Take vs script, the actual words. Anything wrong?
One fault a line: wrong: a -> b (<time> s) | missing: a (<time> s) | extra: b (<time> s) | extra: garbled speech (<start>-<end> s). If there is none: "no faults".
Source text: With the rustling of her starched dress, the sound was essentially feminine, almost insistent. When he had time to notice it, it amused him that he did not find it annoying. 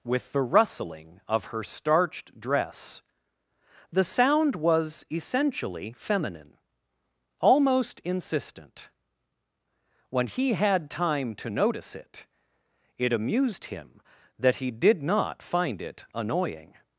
no faults